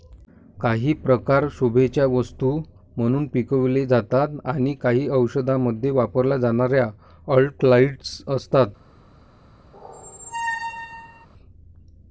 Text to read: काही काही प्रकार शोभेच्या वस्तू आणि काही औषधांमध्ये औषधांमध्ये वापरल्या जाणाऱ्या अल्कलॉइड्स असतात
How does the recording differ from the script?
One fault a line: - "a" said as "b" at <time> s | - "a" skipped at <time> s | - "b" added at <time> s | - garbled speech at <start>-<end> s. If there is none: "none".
- "काही" skipped at 0.9 s
- "म्हणून पिकवले जातात" added at 3.0 s
- "औषधांमध्ये" skipped at 5.9 s